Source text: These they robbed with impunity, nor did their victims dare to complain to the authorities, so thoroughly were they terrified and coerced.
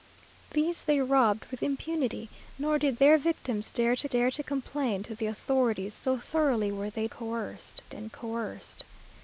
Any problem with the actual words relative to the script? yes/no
yes